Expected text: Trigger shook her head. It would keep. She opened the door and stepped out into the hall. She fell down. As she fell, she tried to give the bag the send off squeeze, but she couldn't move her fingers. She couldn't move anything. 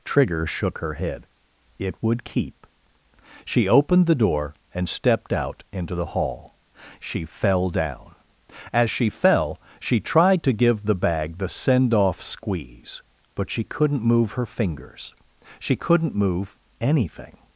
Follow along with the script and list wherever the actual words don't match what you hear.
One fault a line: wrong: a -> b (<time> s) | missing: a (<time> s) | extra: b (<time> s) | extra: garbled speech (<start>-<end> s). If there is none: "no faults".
no faults